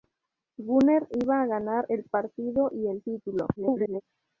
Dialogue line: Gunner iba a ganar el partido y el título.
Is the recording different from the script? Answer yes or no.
yes